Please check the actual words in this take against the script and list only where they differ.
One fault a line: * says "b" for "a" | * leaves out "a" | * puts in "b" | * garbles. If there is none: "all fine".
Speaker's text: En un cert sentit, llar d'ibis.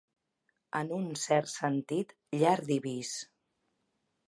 all fine